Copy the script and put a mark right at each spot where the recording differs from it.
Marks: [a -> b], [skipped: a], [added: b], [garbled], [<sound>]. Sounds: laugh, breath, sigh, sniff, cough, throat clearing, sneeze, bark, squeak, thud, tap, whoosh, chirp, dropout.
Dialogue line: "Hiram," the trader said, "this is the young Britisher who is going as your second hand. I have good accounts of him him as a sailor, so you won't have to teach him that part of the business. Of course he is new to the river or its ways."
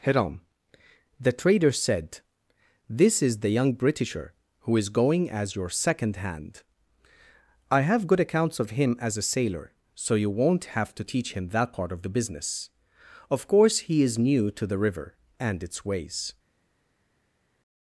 "Hiram," the trader said, "this is the young Britisher who is going as your second hand. I have good accounts of him [skipped: him] as a sailor, so you won't have to teach him that part of the business. Of course he is new to the river [or -> and] its ways."